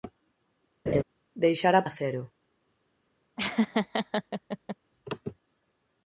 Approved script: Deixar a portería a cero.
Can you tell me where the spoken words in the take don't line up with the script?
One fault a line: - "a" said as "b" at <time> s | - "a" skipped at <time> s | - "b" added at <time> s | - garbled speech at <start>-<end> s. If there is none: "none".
- "portería" skipped at 1.9 s